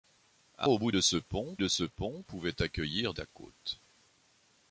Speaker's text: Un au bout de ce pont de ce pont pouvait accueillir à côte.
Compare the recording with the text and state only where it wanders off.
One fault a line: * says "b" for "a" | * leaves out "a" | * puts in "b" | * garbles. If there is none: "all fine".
all fine